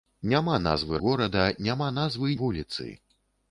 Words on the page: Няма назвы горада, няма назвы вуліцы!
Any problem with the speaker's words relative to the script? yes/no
no